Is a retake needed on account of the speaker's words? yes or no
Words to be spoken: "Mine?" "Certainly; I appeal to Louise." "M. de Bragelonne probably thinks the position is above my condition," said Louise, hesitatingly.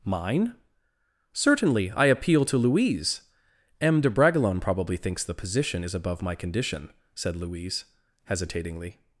no